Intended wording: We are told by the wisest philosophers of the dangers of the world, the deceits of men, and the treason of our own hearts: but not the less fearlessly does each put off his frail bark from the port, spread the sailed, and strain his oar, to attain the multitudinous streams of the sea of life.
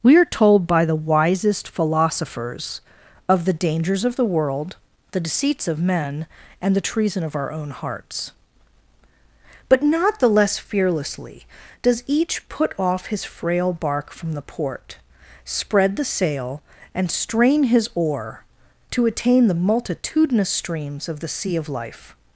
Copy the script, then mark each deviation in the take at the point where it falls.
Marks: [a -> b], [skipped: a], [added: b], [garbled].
We are told by the wisest philosophers of the dangers of the world, the deceits of men, and the treason of our own hearts: but not the less fearlessly does each put off his frail bark from the port, spread the [sailed, -> sail] and strain his oar, to attain the multitudinous streams of the sea of life.